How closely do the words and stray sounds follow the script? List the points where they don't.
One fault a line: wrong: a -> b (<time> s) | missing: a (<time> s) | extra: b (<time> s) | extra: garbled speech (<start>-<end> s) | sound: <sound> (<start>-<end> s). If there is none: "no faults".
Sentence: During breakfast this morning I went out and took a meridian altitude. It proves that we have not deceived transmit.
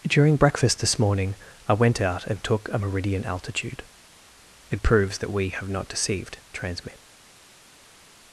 no faults